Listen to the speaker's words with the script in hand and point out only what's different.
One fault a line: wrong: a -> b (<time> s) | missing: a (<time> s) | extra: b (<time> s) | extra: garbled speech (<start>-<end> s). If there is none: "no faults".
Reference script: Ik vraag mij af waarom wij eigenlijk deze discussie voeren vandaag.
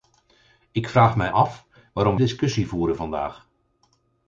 missing: wij eigenlijk deze (2.2 s)